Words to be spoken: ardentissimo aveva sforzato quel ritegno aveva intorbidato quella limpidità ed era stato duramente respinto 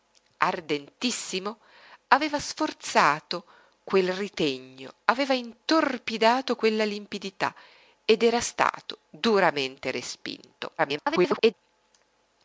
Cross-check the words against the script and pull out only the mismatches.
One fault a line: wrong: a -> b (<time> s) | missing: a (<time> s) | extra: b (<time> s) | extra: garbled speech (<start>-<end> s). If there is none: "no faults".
extra: garbled speech (10.8-11.5 s)